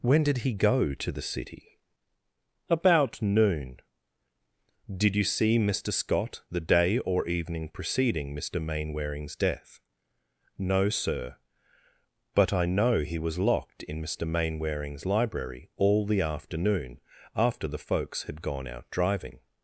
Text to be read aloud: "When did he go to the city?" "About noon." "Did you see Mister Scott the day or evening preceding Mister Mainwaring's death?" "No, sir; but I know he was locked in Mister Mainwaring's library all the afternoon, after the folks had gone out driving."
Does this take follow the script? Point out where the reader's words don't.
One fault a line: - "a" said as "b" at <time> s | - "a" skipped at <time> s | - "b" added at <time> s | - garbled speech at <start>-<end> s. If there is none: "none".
none